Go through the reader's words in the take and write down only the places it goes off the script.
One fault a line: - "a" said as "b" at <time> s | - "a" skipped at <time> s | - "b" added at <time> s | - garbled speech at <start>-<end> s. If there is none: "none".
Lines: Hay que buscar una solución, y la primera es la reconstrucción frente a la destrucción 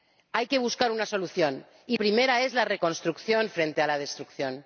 - "la" skipped at 2.0 s